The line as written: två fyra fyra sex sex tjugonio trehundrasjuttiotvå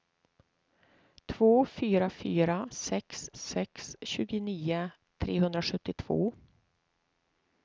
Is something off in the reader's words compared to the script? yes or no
no